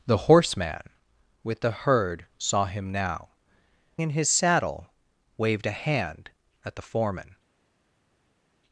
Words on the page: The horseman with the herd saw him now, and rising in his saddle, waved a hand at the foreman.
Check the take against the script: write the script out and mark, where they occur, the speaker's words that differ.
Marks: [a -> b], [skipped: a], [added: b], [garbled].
The horseman with the herd saw him now, [skipped: and rising] in his saddle, waved a hand at the foreman.